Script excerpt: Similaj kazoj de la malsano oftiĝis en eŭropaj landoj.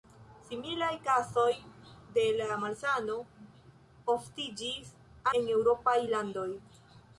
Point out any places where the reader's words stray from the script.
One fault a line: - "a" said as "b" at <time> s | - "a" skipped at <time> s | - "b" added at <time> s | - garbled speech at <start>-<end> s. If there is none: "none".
none